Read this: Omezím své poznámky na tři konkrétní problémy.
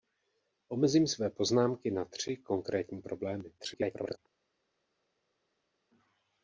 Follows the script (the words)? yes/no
no